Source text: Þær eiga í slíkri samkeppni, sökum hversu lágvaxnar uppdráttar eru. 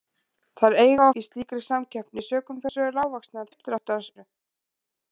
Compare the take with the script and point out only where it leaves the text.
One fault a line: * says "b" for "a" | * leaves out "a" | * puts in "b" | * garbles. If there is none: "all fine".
all fine